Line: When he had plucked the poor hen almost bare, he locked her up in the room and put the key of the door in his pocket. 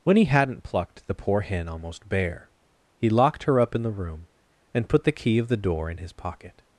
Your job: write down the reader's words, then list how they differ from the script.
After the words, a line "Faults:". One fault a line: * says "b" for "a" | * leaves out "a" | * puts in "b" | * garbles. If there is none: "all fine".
When he hadn't plucked the poor hen almost bare, he locked her up in the room and put the key of the door in his pocket.
Faults:
* says "hadn't" for "had"